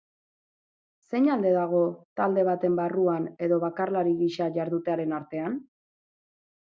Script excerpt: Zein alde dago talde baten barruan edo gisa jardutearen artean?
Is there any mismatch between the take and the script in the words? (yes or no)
yes